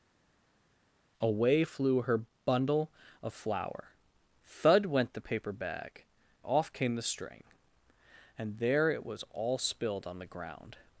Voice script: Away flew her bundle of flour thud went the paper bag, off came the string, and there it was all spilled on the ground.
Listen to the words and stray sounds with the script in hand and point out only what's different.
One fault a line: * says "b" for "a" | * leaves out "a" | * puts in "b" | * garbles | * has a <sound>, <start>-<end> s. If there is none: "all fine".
all fine